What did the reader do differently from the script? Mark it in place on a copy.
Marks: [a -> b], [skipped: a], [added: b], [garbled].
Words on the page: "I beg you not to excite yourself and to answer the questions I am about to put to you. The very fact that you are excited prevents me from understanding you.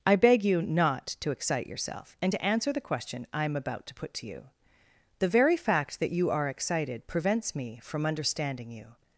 "I beg you not to excite yourself and to answer the [questions -> question] I am about to put to you. The very fact that you are excited prevents me from understanding you.